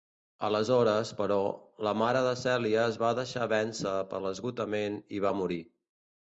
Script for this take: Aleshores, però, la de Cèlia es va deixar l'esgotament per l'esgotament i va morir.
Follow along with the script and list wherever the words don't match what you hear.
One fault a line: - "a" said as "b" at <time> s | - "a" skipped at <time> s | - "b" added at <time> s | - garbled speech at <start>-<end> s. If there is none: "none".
- "mare" added at 2.0 s
- "l'esgotament" said as "vèncer" at 3.6 s